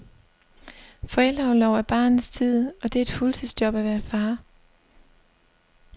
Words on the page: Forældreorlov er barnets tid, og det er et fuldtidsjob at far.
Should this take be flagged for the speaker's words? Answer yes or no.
yes